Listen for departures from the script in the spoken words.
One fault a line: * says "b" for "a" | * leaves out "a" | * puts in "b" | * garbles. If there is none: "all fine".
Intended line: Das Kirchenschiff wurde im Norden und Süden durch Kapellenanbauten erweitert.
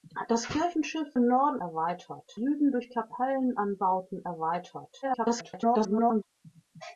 * leaves out "wurde"
* says "erweitert" for "und"
* garbles